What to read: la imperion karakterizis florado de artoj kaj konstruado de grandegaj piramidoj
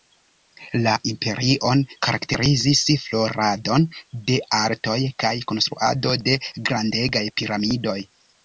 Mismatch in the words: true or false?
false